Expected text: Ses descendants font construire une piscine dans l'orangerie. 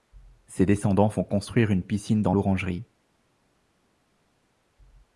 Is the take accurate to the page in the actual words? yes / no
yes